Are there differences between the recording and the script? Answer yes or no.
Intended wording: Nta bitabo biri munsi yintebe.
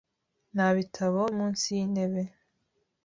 yes